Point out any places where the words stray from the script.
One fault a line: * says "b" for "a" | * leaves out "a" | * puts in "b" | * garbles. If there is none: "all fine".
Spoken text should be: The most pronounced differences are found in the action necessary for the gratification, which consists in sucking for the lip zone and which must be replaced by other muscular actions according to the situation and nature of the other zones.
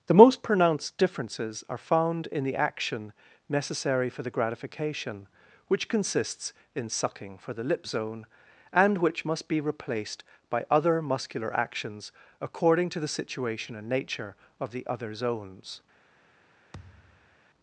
all fine